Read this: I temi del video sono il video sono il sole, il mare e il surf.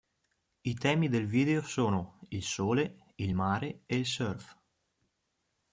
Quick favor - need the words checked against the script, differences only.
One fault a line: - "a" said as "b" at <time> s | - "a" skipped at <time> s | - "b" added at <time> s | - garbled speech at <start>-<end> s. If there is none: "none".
- "video sono il" skipped at 2.4 s